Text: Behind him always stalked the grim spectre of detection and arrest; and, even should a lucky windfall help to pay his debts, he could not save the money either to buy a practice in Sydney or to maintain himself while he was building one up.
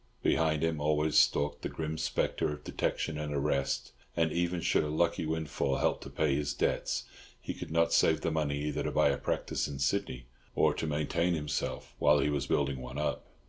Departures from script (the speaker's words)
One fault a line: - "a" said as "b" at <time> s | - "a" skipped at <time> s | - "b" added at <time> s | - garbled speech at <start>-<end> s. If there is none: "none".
none